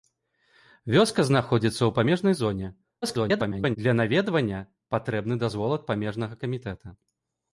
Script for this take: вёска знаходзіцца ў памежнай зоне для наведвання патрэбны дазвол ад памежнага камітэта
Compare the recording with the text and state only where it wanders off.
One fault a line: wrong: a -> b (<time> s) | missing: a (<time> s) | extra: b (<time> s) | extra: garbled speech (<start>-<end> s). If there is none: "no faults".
extra: garbled speech (3.0-3.8 s)